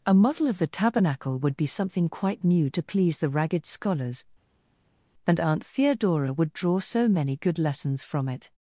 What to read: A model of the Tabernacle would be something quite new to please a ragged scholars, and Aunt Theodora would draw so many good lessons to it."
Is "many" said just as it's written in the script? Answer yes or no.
yes